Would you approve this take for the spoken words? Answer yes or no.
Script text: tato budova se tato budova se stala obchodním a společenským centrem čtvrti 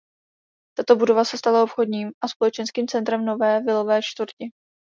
no